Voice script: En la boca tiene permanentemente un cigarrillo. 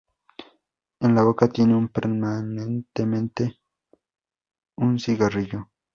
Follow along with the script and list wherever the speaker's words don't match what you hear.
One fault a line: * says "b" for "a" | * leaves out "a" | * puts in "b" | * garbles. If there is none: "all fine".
all fine